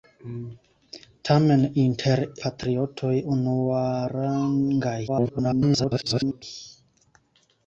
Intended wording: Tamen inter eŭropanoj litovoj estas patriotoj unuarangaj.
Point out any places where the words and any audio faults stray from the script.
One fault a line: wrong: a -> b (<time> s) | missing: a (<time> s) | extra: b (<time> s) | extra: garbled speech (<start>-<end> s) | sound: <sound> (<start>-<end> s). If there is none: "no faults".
missing: eŭropanoj litovoj estas (2.2 s)
extra: garbled speech (5.1-6.4 s)